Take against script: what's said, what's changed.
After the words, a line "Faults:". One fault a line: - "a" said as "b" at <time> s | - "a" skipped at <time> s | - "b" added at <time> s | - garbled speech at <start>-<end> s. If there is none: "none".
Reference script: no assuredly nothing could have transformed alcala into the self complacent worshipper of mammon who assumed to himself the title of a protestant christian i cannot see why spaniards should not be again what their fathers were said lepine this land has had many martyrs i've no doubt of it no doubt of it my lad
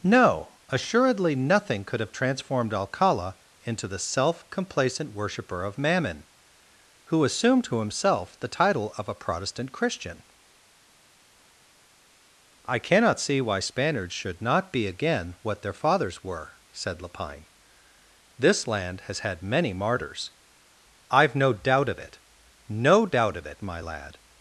no assuredly nothing could have transformed alcala into the self complacent worshipper of mammon who assumed to himself the title of a protestant christian i cannot see why spaniards should not be again what their fathers were said lepine this land has had many martyrs i've no doubt of it no doubt of it my lad
Faults:
none